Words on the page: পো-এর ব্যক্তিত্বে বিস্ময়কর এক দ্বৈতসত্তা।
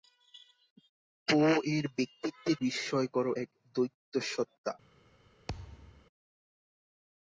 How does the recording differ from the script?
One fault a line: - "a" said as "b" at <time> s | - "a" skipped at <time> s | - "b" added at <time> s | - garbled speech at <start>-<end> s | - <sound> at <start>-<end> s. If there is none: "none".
- thud at 5.5-6.1 s